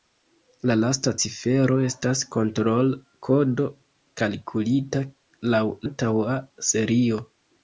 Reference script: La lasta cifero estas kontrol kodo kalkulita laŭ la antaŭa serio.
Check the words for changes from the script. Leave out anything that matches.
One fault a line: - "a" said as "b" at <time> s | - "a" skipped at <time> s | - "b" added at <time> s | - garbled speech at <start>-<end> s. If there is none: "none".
- "la" skipped at 5.7 s